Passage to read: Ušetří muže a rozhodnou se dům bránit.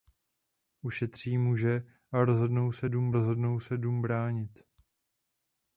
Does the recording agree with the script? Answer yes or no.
no